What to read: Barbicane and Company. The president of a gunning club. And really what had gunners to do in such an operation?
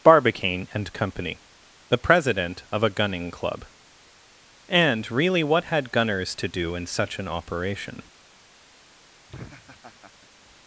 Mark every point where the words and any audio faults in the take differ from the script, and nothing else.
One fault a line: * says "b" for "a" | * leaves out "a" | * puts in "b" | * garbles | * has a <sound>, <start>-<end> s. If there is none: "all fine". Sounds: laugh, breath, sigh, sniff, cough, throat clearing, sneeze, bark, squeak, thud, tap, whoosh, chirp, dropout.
* has a laugh, 9.3-10.3 s